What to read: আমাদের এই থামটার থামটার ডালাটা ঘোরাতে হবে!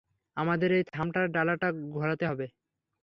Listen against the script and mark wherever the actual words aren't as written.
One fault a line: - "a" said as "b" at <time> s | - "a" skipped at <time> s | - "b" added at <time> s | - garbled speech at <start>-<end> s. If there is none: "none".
- "থামটার" skipped at 1.2 s